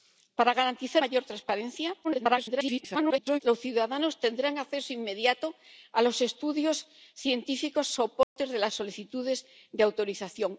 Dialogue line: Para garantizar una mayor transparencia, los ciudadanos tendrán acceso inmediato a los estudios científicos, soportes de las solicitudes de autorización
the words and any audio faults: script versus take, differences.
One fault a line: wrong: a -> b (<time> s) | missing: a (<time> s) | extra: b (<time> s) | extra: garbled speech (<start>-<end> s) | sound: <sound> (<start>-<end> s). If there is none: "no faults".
missing: una (1.0 s)
extra: garbled speech (2.0-3.4 s)
sound: dropout (8.2-8.4 s)